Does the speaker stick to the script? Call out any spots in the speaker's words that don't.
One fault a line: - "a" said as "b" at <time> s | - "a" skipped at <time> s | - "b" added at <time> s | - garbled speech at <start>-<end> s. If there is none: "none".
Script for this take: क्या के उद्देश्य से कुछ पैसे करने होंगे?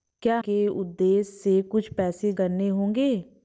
none